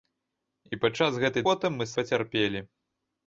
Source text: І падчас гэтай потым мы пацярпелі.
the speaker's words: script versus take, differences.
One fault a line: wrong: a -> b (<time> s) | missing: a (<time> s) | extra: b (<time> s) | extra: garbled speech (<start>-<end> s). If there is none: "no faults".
no faults